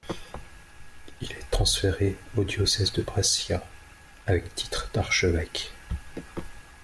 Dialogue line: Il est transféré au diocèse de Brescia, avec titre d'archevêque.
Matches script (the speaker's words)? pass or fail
pass